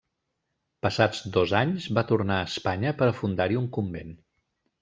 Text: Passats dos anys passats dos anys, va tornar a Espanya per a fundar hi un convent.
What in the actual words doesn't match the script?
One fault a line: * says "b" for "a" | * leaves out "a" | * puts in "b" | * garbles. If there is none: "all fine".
* leaves out "passats dos anys"